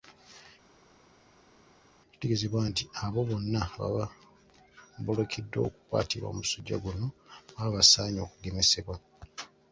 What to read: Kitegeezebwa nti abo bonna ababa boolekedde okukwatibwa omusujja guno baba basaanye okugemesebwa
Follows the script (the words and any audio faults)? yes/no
yes